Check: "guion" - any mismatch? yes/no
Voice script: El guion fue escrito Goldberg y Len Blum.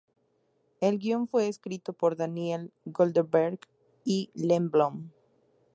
no